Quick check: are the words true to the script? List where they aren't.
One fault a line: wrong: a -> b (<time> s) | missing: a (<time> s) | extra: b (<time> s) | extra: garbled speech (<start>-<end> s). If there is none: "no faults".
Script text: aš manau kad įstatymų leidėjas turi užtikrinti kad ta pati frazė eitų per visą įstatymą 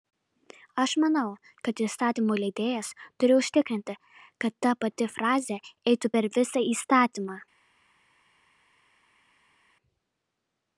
no faults